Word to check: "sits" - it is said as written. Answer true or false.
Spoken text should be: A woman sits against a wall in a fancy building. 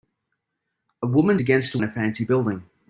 false